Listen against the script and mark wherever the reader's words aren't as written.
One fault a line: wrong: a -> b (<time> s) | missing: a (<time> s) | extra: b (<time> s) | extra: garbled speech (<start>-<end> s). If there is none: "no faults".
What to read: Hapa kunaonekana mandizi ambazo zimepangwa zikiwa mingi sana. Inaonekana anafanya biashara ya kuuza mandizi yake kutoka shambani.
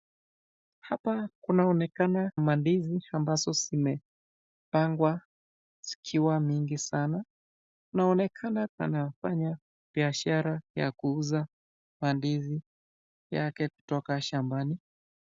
no faults